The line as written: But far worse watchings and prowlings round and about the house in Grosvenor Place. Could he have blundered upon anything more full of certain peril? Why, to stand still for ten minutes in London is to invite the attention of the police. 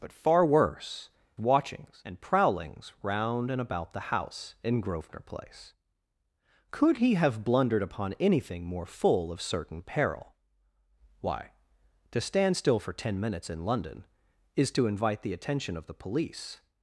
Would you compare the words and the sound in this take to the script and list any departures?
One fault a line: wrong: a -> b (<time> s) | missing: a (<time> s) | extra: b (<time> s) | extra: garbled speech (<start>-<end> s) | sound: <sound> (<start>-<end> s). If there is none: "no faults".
no faults